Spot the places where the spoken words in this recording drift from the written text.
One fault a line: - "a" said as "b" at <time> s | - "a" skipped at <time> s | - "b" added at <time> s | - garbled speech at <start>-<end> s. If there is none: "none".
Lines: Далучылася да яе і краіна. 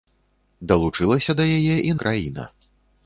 none